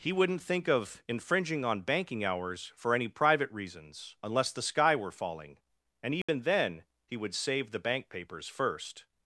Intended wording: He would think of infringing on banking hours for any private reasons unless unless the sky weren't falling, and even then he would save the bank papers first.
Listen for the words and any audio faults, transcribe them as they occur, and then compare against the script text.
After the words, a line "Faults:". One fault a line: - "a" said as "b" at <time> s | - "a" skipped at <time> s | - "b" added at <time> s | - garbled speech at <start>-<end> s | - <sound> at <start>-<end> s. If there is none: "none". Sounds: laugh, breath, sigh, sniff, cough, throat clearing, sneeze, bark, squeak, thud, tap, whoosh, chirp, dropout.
He wouldn't think of infringing on banking hours for any private reasons unless the sky were falling, and even then he would save the bank papers first.
Faults:
- "would" said as "wouldn't" at 0.1 s
- "unless" skipped at 4.5 s
- "weren't" said as "were" at 5.0 s
- dropout at 6.2-6.3 s